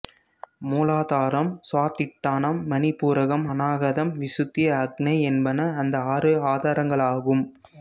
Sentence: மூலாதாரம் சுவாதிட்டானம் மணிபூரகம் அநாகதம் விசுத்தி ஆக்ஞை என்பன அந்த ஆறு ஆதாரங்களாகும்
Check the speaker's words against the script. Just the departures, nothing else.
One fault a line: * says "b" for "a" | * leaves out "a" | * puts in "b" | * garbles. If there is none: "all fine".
all fine